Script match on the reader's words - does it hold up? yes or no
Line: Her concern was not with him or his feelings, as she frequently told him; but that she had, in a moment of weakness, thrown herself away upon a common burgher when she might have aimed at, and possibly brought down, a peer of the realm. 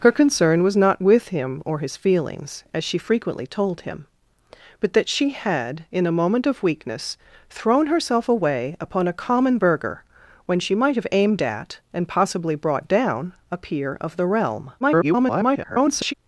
no